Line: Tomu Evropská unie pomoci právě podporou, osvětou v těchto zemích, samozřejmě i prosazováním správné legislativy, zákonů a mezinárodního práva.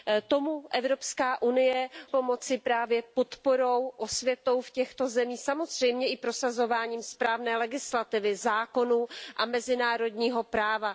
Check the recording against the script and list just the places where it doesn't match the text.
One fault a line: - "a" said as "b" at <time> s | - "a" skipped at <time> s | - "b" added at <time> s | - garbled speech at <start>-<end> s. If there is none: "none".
none